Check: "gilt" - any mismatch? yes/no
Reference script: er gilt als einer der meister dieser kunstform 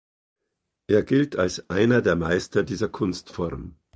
no